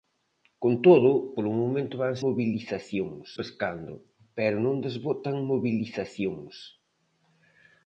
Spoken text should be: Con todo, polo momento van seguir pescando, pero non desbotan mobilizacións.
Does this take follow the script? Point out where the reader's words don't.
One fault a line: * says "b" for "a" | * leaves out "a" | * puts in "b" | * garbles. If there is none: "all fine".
* says "mobilizacións" for "seguir"